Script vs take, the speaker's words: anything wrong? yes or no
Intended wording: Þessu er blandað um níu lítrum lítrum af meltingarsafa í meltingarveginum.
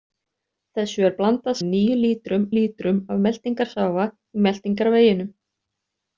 no